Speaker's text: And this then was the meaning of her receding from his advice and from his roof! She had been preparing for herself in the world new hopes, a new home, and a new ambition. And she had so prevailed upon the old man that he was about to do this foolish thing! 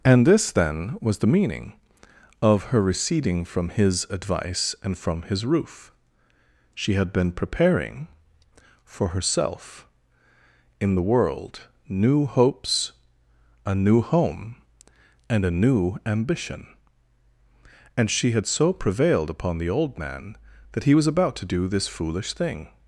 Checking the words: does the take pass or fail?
pass